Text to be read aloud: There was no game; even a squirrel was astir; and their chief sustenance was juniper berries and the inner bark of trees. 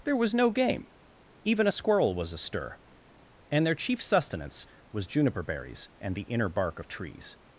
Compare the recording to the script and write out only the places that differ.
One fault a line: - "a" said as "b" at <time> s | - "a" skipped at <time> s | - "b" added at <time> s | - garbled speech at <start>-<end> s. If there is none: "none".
none